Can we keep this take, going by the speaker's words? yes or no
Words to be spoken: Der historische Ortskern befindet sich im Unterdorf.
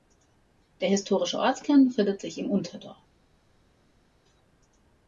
yes